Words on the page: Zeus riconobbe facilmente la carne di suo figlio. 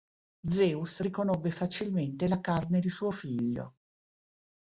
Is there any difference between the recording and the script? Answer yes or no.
no